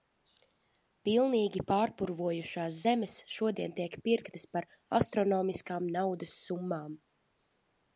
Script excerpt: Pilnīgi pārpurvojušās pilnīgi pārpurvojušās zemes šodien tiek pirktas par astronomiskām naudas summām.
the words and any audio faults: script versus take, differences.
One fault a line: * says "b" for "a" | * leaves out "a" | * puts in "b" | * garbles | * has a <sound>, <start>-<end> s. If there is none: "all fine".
* leaves out "pilnīgi pārpurvojušās"